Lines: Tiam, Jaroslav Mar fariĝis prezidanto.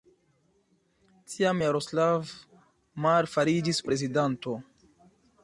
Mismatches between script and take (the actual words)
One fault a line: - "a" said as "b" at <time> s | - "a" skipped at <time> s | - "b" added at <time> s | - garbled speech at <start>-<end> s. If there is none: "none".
none